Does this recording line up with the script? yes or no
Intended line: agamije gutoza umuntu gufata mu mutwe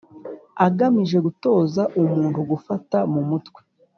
yes